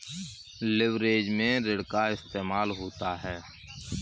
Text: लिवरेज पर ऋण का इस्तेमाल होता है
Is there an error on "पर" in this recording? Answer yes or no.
yes